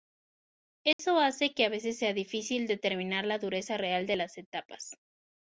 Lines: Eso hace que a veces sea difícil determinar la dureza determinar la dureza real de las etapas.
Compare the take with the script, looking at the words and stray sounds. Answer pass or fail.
fail